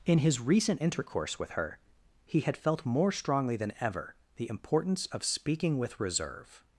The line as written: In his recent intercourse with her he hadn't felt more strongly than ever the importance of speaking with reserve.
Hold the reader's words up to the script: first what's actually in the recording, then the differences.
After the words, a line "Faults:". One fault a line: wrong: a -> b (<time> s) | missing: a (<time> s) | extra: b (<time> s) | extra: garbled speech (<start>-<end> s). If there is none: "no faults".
In his recent intercourse with her he had felt more strongly than ever the importance of speaking with reserve.
Faults:
wrong: hadn't -> had (2.4 s)